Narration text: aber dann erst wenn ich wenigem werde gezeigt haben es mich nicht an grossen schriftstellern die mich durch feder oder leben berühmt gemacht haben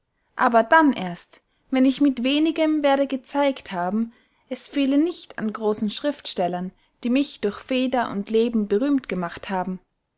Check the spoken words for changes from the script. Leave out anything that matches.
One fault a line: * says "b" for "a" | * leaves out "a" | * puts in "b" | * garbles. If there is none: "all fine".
* puts in "mit"
* says "fehle" for "mich"
* says "und" for "oder"